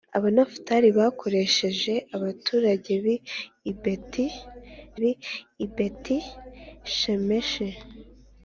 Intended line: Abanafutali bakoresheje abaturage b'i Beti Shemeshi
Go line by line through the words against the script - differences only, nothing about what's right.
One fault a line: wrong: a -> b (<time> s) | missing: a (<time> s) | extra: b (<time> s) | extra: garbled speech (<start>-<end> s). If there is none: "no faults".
extra: b'i Beti (5.0 s)